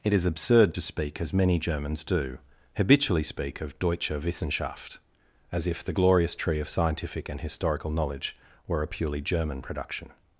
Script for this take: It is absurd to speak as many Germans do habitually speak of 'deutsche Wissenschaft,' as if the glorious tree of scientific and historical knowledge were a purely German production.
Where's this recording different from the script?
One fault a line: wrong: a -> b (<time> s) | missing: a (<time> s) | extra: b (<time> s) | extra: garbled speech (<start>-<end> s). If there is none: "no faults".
no faults